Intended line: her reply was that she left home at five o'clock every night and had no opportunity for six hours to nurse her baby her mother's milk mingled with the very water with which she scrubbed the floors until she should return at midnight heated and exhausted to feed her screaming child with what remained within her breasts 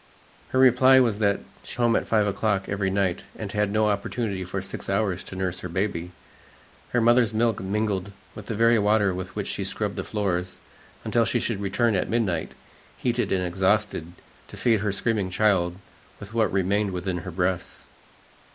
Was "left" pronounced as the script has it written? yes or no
no